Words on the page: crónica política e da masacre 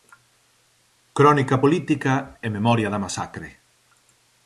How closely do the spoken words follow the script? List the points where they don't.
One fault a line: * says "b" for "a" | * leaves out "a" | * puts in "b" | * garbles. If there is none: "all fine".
* puts in "memoria"